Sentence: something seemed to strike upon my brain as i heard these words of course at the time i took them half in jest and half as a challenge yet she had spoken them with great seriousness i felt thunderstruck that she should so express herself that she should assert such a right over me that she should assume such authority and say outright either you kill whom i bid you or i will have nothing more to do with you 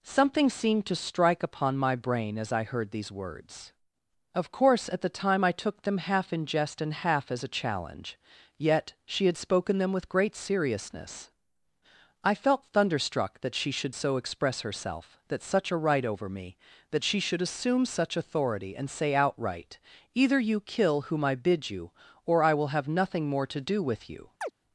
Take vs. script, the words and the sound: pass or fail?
fail